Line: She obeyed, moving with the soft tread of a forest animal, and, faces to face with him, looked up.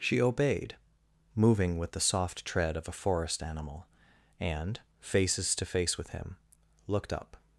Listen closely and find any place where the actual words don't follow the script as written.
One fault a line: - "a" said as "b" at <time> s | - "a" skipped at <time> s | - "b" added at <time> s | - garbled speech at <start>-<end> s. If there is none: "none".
none